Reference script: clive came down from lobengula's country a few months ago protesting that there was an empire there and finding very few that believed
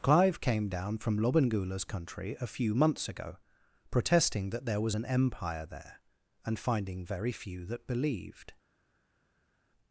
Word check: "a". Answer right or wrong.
right